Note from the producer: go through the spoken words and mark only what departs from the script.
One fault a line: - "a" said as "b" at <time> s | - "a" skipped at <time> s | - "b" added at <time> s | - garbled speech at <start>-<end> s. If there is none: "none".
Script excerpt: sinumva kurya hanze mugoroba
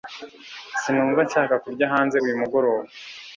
- "nshaka" added at 1.3 s
- "uyu" added at 2.2 s